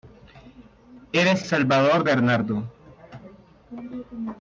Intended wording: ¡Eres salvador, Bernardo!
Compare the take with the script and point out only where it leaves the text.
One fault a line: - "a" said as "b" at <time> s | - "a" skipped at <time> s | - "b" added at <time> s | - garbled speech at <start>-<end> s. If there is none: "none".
none